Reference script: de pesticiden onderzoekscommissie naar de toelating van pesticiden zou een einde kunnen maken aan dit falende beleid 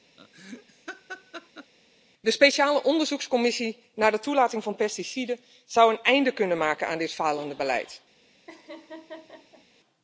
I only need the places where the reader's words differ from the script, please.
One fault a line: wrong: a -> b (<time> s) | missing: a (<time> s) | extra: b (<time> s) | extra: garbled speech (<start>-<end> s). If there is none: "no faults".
wrong: pesticiden -> speciale (2.3 s)